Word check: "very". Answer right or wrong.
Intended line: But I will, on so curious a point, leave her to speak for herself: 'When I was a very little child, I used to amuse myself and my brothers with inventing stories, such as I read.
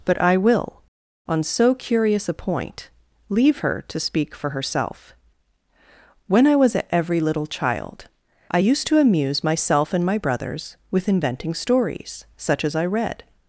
wrong